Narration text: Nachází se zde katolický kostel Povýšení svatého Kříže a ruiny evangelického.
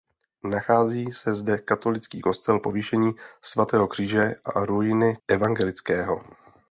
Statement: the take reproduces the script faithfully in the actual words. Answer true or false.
true